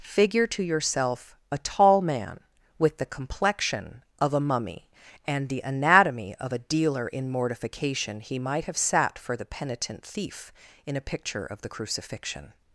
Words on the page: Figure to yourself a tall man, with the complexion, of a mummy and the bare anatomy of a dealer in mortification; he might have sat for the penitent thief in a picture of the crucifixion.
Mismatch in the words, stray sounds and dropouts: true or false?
true